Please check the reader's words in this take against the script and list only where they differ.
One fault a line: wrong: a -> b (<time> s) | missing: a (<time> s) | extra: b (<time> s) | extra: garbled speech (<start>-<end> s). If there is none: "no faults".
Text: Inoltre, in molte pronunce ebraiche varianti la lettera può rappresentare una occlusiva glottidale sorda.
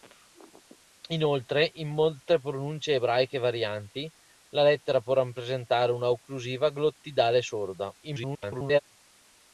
extra: garbled speech (8.0-8.8 s)